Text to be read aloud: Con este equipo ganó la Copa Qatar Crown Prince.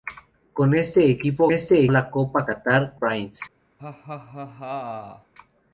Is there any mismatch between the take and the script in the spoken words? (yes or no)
yes